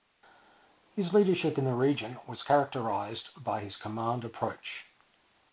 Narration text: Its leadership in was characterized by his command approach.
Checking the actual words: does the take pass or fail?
fail